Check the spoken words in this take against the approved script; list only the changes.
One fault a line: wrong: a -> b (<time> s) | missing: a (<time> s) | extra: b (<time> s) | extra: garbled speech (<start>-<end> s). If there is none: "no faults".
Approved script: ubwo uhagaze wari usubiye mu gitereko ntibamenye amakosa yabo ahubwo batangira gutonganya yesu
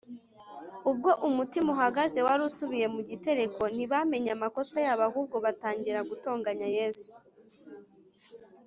extra: umutima (1.3 s)